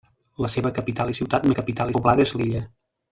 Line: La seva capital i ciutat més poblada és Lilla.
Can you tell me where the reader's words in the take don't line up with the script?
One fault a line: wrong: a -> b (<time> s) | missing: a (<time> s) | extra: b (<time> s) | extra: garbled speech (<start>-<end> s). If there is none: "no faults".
wrong: més -> capital (1.6 s)